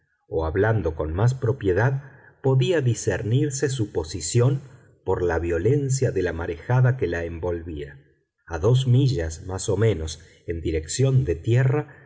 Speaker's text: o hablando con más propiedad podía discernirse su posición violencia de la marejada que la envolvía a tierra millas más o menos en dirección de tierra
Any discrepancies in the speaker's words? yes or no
yes